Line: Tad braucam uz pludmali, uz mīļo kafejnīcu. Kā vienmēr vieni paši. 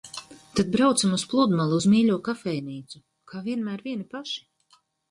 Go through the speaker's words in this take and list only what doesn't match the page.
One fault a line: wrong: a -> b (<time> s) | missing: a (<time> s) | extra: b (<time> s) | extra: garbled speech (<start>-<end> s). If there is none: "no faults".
no faults